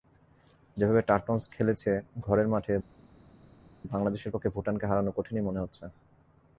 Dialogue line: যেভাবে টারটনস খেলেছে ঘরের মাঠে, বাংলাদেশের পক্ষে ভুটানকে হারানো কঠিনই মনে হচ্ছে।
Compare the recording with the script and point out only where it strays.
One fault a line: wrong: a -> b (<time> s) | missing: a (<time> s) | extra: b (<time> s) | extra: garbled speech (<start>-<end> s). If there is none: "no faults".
no faults